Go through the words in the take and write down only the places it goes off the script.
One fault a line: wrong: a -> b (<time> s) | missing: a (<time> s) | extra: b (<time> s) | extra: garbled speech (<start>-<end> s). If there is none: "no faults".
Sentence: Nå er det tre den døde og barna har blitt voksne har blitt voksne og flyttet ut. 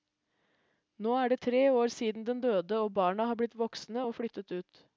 extra: år siden (1.7 s)
missing: har blitt voksne (4.1 s)